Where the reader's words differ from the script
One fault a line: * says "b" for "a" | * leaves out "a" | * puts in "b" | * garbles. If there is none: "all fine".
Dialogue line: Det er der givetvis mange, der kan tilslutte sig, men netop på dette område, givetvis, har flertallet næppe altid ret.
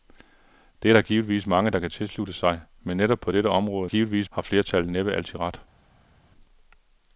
all fine